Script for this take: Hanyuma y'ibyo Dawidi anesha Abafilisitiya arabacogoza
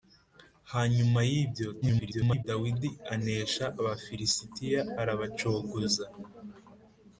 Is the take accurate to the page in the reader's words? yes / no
no